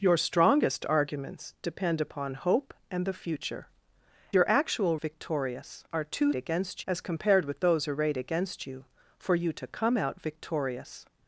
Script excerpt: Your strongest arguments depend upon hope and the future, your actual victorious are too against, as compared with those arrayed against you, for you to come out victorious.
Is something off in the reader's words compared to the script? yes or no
no